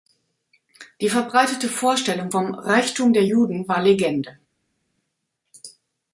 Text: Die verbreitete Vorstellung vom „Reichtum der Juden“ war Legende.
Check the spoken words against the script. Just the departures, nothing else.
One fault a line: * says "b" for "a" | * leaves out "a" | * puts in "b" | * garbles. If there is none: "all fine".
all fine